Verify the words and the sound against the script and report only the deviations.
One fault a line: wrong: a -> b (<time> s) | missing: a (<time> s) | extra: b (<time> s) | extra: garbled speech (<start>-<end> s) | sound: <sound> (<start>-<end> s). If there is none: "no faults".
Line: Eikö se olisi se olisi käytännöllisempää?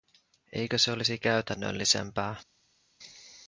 missing: se olisi (1.2 s)